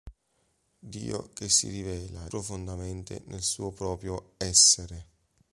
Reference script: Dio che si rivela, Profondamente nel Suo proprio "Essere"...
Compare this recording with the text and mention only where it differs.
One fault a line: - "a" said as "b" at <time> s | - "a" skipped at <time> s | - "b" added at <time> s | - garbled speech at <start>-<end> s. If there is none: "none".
none